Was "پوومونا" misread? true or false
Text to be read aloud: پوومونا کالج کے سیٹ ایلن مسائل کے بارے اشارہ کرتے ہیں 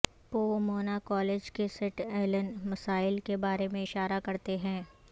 false